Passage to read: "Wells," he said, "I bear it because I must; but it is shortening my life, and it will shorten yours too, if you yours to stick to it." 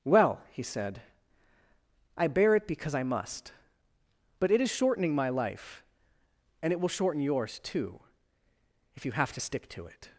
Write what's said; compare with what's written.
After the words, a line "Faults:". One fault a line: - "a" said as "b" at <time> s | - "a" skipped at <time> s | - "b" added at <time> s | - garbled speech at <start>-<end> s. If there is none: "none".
"Well," he said, "I bear it because I must; but it is shortening my life, and it will shorten yours too, if you have to stick to it."
Faults:
- "Wells" said as "Well" at 0.0 s
- "yours" said as "have" at 9.1 s